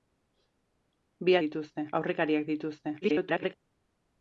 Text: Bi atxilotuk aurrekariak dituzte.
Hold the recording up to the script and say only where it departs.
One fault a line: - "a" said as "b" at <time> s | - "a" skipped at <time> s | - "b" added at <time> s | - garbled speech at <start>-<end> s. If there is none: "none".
- "atxilotuk" said as "dituzte" at 1.4 s
- garbled speech at 3.0-3.5 s